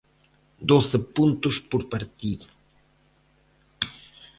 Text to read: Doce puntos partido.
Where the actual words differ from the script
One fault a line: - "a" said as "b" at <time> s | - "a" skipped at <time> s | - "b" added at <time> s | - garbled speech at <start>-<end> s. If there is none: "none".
- "por" added at 1.7 s